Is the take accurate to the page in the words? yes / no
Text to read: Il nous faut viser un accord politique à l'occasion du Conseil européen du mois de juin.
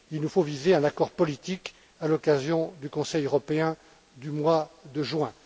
yes